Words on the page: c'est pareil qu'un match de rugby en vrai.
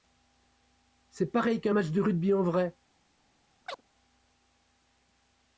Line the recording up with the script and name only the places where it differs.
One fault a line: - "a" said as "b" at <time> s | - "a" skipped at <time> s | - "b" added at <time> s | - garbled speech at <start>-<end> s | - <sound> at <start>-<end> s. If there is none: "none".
- chirp at 3.7-3.8 s